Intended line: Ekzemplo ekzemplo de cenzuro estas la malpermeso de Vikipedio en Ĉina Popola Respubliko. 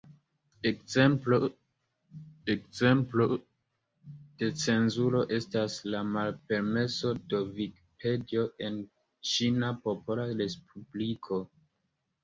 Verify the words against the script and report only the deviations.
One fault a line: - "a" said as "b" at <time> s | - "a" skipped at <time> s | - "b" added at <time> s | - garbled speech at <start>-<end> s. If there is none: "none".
none